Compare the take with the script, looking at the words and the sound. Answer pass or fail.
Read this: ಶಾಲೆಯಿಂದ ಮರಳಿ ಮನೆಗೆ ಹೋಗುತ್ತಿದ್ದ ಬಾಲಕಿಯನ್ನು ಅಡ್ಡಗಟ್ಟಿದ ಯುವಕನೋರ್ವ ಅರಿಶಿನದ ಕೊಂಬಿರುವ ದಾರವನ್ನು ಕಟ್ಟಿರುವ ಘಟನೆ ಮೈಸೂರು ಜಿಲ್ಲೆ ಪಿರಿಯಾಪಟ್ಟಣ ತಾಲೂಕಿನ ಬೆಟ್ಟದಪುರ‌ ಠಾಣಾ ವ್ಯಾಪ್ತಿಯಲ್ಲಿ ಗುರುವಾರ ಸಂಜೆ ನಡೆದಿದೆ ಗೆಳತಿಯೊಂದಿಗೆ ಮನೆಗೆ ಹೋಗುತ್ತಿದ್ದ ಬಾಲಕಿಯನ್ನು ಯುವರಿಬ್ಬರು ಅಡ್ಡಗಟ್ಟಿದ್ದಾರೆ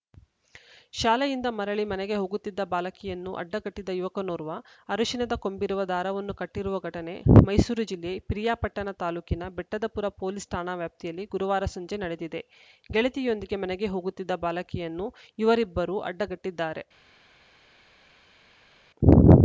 fail